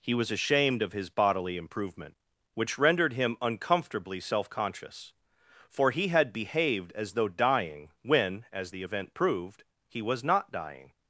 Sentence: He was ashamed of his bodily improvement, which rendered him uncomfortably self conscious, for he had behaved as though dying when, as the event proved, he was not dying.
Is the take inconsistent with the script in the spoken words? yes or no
no